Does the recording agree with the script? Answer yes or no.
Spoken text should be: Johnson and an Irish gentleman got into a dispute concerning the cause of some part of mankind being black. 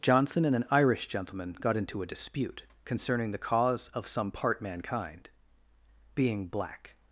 no